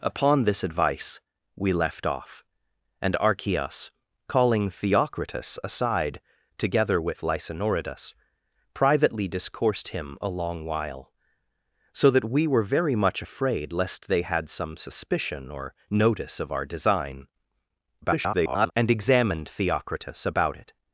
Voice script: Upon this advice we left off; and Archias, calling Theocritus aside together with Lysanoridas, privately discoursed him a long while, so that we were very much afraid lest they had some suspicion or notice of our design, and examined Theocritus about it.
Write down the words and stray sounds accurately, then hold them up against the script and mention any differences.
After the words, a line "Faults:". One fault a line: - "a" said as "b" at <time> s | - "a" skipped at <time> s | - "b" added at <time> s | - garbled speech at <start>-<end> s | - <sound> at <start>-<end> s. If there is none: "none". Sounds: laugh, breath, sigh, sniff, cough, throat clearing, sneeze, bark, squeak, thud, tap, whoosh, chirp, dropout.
Upon this advice we left off; and Archias, calling Theocritus aside together with Lysanoridas, privately discoursed him a long while, so that we were very much afraid lest they had some suspicion or notice of our design, [garbled] and examined Theocritus about it.
Faults:
- garbled speech at 18.0-18.7 s